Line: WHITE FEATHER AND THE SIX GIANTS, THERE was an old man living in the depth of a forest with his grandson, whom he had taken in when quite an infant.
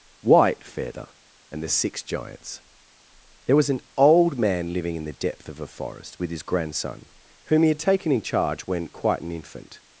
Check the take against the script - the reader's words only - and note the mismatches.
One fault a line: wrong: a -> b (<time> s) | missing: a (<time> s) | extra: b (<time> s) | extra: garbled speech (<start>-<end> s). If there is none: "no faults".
extra: charge (8.2 s)